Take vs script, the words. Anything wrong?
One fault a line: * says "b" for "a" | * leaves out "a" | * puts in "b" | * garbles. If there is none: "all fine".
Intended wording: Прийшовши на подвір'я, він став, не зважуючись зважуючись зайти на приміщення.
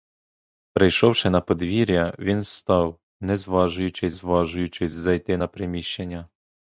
all fine